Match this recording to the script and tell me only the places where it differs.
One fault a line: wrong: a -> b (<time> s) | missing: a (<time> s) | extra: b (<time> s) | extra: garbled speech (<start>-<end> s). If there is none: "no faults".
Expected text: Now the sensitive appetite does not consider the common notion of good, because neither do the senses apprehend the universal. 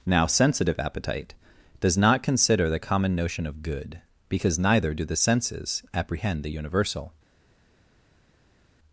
missing: the (0.3 s)